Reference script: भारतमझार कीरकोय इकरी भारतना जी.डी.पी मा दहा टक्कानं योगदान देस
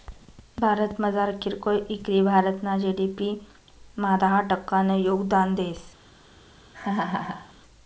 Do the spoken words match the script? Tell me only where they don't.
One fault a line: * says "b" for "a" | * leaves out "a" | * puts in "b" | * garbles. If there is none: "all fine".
all fine